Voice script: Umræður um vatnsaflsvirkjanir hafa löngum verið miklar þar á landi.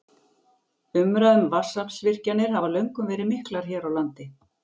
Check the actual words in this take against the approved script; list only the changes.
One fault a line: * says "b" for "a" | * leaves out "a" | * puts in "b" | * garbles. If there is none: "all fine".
* says "hér" for "þar"